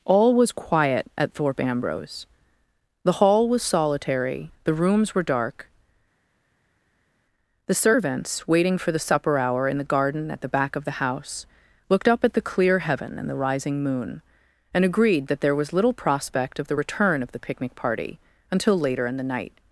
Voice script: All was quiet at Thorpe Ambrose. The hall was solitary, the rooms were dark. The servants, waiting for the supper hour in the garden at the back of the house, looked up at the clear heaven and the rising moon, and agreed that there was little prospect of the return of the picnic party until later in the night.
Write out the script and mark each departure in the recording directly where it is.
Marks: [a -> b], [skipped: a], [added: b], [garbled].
All was quiet at Thorpe Ambrose. The hall was solitary, the rooms were dark. The servants, waiting for the supper hour in the garden at the back of the house, looked up at the clear heaven and the rising moon, and agreed that there was little prospect of the return of the picnic party until later in the night.